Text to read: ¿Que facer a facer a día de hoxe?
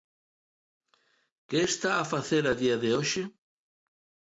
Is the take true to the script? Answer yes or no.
no